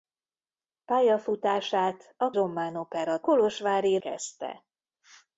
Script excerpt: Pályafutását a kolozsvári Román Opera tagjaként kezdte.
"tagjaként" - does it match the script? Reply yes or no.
no